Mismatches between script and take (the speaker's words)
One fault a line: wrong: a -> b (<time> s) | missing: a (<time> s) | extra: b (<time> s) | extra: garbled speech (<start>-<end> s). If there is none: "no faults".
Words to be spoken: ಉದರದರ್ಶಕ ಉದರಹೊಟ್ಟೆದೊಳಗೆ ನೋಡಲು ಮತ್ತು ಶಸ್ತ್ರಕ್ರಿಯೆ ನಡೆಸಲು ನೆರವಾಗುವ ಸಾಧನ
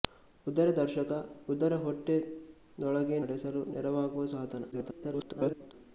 missing: ನೋಡಲು ಮತ್ತು ಶಸ್ತ್ರಕ್ರಿಯೆ (3.2 s)
extra: garbled speech (4.7-5.7 s)